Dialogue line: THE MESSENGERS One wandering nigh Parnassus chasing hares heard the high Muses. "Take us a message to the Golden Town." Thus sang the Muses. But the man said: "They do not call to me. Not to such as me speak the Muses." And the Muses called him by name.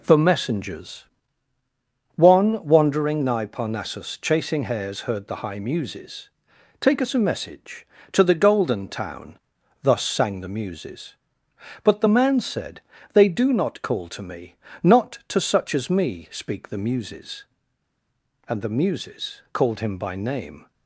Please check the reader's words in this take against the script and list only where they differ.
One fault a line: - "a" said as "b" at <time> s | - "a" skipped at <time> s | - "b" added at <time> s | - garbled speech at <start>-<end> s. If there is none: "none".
none